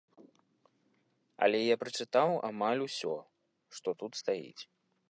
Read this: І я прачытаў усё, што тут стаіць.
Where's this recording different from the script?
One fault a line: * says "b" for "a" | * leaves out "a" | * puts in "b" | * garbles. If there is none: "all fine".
* says "Але" for "І"
* puts in "амаль"